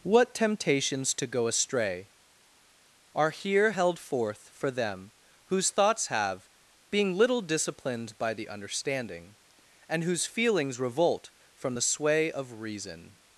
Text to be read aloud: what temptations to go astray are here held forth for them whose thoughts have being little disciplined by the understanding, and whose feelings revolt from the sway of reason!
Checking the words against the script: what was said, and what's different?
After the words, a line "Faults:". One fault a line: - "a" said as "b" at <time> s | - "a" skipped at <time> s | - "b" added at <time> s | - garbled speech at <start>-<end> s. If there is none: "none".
what temptations to go astray are here held forth for them whose thoughts have being little disciplined by the understanding, and whose feelings revolt from the sway of reason!
Faults:
none